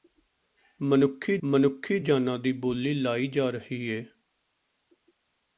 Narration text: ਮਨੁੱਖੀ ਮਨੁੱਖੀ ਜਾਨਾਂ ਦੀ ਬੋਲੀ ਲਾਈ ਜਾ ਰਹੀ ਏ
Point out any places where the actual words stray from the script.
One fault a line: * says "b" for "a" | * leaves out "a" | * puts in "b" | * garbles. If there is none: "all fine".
all fine